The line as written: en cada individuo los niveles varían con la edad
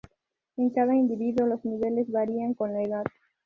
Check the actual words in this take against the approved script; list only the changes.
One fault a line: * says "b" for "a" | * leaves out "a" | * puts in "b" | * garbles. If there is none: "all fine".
all fine